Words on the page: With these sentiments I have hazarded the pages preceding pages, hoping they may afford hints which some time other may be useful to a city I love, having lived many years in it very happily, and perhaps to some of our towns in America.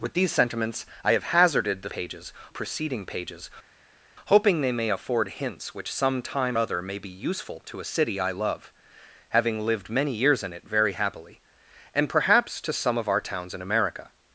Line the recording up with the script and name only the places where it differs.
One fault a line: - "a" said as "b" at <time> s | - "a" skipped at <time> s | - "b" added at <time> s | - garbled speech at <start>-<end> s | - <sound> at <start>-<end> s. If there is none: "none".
none